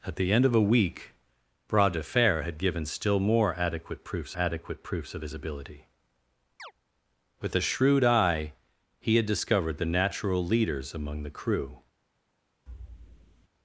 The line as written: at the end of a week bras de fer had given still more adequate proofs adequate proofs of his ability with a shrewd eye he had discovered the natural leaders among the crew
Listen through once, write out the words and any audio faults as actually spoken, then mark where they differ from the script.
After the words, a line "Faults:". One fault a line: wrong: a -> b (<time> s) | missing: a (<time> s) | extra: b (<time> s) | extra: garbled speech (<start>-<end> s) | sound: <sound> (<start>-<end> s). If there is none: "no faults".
at the end of a week bras de fer had given still more adequate proofs adequate proofs of his ability with a shrewd eye he had discovered the natural leaders among the crew
Faults:
sound: chirp (6.6-6.7 s)
sound: thud (12.7-13.5 s)